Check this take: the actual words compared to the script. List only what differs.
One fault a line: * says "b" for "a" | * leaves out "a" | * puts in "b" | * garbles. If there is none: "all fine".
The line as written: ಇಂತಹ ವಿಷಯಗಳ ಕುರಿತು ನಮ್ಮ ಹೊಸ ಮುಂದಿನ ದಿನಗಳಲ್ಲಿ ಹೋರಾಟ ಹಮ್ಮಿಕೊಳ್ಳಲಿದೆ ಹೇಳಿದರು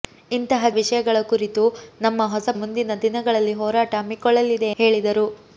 all fine